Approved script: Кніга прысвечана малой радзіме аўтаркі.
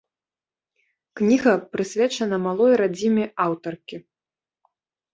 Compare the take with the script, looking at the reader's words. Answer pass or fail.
pass